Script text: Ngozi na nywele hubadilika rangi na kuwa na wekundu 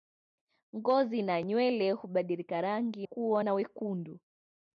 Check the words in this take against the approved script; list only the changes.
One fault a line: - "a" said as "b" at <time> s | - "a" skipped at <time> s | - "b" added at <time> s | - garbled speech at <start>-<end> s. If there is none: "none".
- "na" skipped at 3.1 s